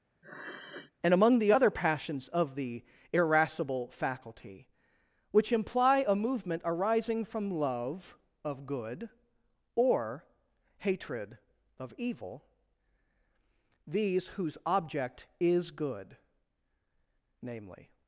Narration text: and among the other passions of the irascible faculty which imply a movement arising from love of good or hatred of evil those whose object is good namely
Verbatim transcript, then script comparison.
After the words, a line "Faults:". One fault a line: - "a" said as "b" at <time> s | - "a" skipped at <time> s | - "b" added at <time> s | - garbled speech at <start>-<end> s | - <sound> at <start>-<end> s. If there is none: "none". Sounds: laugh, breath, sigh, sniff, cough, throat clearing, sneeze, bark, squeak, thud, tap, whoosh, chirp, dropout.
and among the other passions of the irascible faculty which imply a movement arising from love of good or hatred of evil these whose object is good namely
Faults:
- sniff at 0.2-0.9 s
- "those" said as "these" at 13.9 s